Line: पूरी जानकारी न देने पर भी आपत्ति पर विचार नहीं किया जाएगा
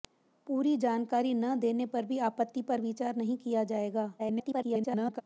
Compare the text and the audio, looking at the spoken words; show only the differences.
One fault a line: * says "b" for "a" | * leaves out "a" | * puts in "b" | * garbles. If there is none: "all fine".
* garbles